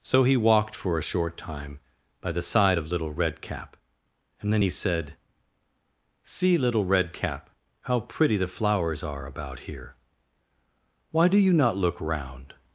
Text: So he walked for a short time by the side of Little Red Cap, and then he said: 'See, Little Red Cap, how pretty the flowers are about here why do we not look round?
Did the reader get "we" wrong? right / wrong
wrong